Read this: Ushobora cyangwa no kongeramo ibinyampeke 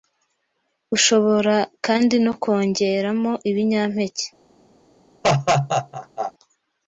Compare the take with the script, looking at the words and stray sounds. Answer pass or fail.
fail